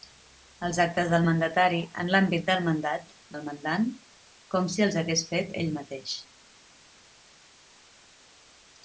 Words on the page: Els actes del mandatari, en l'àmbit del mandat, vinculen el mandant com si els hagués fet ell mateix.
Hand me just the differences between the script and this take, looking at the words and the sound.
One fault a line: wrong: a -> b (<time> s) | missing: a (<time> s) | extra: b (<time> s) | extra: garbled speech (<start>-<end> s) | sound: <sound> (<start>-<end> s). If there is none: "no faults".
missing: vinculen (3.1 s)